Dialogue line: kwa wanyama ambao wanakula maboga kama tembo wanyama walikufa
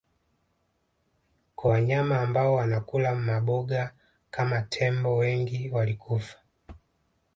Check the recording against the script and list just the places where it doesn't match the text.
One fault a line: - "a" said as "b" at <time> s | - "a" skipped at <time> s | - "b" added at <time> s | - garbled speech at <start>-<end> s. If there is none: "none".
- "wanyama" said as "wengi" at 5.2 s